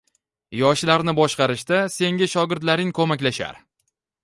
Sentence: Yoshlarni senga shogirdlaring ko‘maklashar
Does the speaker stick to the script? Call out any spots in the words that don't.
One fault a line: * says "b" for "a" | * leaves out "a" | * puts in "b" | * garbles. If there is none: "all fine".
* puts in "boshqarishda"